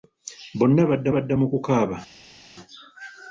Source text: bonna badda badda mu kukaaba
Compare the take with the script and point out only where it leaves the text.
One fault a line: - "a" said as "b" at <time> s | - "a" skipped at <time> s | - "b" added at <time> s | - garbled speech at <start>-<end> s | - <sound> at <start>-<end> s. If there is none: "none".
none